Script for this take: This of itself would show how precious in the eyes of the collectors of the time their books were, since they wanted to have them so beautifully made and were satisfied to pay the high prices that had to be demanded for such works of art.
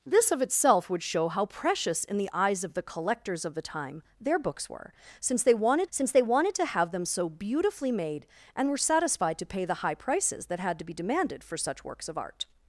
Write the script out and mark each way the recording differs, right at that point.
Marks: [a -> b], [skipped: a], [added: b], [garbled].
This of itself would show how precious in the eyes of the collectors of the time their books were, since they wanted [added: since they wanted] to have them so beautifully made and were satisfied to pay the high prices that had to be demanded for such works of art.